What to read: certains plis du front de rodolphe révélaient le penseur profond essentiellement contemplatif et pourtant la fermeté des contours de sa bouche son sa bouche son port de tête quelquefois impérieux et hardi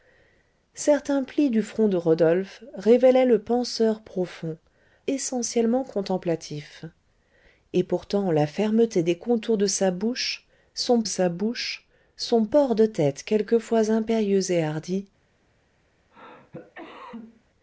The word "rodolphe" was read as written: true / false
true